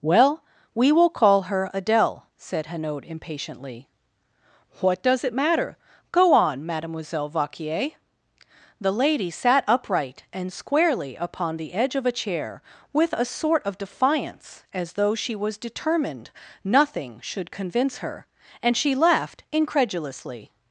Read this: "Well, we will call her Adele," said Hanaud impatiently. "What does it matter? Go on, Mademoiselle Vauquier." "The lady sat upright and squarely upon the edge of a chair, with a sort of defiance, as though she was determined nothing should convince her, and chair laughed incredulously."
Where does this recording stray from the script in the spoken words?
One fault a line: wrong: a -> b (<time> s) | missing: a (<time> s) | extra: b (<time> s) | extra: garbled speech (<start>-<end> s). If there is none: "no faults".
wrong: chair -> she (18.8 s)